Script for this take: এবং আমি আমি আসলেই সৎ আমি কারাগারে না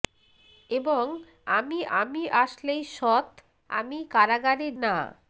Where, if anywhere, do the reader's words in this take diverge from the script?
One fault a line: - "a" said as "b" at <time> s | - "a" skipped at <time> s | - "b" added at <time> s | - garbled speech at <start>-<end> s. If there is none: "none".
none